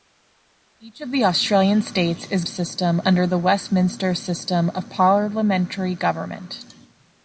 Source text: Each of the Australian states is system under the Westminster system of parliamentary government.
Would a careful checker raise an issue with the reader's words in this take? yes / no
no